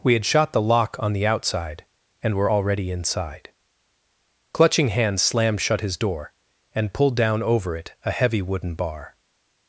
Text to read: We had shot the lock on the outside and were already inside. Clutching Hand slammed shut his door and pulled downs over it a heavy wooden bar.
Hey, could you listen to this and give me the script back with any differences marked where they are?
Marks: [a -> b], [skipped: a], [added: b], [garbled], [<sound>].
We had shot the lock on the outside and were already inside. Clutching Hand slammed shut his door and pulled [downs -> down] over it a heavy wooden bar.